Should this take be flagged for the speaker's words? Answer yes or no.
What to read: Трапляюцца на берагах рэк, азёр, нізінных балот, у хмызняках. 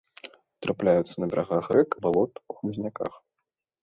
yes